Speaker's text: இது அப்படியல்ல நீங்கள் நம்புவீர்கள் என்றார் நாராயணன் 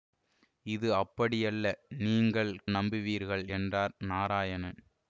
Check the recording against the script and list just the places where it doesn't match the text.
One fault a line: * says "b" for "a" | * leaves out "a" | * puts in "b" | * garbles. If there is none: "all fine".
all fine